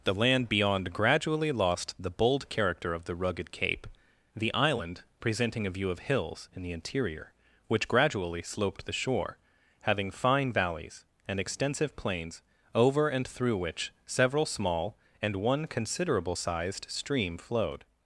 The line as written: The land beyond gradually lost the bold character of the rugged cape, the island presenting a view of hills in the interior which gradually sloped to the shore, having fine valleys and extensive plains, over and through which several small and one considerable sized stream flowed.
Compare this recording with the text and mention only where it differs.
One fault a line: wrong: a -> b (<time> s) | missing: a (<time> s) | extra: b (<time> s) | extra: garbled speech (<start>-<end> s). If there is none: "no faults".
missing: to (8.9 s)